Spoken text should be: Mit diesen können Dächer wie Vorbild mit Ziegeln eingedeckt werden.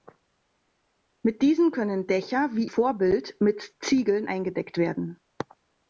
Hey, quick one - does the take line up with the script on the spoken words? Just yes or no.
yes